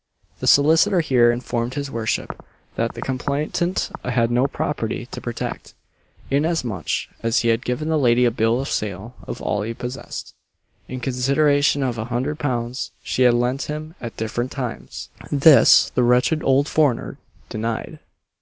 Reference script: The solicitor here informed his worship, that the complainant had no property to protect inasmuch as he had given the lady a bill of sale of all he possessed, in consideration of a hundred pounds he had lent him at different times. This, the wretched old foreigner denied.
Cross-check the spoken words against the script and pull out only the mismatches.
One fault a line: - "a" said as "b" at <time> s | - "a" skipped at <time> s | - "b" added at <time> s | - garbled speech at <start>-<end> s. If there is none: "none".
- "he" said as "she" at 13.0 s